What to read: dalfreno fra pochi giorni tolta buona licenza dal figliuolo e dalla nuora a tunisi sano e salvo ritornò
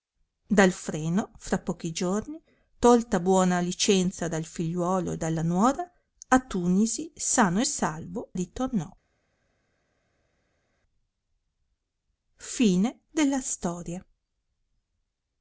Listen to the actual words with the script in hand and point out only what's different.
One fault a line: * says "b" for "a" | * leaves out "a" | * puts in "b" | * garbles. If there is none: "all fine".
all fine